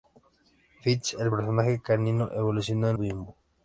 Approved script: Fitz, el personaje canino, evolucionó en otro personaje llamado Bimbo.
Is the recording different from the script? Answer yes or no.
yes